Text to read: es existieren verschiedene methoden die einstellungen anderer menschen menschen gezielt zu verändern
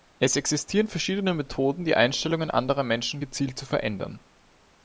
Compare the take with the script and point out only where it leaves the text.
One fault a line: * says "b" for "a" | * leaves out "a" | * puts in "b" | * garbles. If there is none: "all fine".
* leaves out "menschen"